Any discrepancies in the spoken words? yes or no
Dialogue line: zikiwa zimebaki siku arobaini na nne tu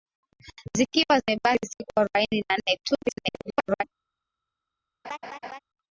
yes